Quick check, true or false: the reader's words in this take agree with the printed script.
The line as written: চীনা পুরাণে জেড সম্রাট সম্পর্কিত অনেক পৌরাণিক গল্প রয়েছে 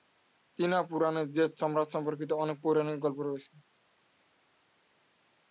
true